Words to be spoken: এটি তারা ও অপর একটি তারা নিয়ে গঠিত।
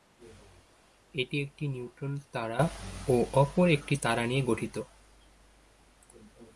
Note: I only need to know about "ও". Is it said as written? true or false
true